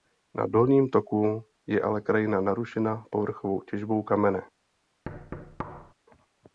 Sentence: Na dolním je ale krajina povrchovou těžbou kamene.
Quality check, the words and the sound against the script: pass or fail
fail